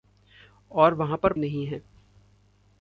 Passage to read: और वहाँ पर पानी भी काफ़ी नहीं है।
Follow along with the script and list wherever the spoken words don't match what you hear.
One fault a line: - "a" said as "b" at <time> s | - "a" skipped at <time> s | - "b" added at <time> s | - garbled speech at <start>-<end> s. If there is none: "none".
- "पानी भी काफ़ी" skipped at 1.3 s